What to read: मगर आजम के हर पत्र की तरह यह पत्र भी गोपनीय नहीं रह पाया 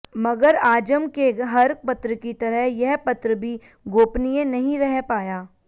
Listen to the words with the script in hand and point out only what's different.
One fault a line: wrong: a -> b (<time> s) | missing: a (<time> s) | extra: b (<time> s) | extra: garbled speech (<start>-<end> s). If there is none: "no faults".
no faults